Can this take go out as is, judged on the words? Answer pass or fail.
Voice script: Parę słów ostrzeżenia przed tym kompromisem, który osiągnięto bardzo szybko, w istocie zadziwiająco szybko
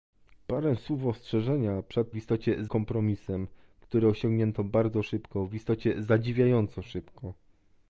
fail